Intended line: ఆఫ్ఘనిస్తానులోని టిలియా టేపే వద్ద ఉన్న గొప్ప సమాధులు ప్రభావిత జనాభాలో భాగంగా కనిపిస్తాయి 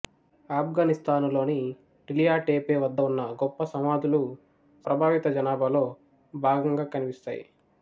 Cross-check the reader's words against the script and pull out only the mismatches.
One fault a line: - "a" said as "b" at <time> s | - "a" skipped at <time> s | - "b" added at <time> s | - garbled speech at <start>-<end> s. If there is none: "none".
none